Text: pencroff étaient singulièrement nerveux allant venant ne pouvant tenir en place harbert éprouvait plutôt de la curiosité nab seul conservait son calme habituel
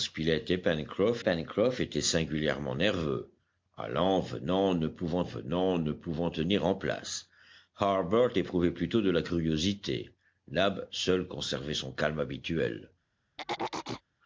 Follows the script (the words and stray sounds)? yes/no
no